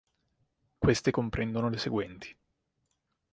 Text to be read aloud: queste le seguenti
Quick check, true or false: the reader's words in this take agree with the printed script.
false